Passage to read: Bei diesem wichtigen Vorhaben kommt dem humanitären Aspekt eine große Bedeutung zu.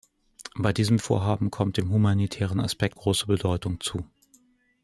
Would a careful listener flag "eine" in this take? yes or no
yes